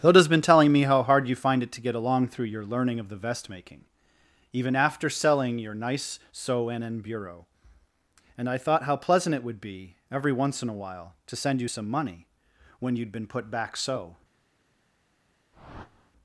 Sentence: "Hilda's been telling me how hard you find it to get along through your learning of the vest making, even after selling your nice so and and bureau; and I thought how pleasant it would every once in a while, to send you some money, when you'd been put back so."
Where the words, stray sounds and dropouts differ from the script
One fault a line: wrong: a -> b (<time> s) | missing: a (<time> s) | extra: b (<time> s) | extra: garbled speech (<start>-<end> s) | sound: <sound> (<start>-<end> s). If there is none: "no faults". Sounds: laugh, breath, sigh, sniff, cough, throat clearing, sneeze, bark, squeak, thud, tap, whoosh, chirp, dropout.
extra: be (9.6 s)
sound: whoosh (15.5-16.1 s)